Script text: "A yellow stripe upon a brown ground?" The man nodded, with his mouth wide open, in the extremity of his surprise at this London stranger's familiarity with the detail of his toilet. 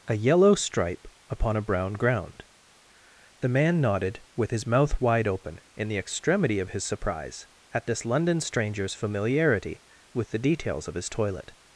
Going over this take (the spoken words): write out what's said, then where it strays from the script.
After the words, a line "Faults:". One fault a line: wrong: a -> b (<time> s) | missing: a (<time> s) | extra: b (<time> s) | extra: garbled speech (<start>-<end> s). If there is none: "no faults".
"A yellow stripe upon a brown ground?" The man nodded, with his mouth wide open, in the extremity of his surprise at this London stranger's familiarity with the details of his toilet.
Faults:
wrong: detail -> details (10.4 s)